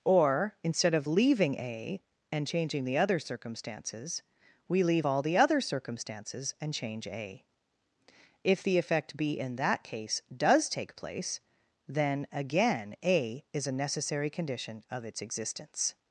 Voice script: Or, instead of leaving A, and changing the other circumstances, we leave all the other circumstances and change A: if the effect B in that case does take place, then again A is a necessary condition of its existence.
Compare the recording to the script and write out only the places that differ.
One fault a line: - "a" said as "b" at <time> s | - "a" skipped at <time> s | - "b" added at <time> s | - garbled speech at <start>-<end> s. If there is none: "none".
none